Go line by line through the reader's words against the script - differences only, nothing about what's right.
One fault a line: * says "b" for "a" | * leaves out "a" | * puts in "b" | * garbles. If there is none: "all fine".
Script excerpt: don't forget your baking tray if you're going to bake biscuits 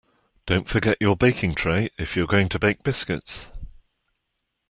all fine